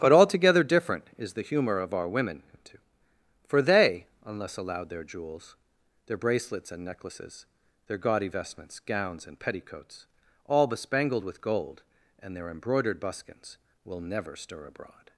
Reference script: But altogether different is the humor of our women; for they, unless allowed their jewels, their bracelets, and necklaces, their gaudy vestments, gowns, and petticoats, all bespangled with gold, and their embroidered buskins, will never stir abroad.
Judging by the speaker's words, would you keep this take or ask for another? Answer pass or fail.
fail